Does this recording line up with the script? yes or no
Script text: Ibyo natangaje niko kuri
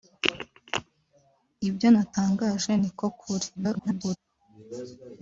no